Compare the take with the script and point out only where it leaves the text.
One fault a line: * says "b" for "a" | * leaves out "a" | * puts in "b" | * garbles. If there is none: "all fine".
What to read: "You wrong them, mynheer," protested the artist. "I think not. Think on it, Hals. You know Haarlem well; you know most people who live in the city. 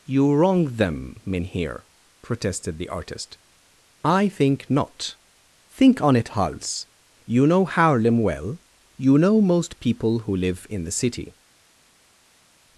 all fine